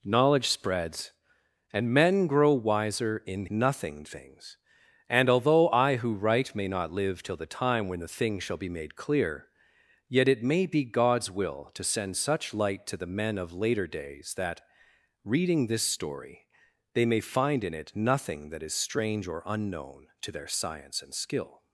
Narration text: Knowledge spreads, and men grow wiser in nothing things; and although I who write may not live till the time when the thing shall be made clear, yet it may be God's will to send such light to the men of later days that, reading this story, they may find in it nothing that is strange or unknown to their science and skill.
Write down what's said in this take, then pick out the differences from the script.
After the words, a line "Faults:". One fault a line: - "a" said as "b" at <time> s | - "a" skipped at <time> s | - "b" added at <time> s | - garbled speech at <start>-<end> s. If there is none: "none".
Knowledge spreads, and men grow wiser in nothing things; and although I who write may not live till the time when the thing shall be made clear, yet it may be God's will to send such light to the men of later days that, reading this story, they may find in it nothing that is strange or unknown to their science and skill.
Faults:
none